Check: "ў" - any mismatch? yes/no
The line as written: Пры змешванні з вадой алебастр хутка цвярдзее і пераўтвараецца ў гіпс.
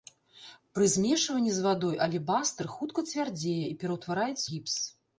yes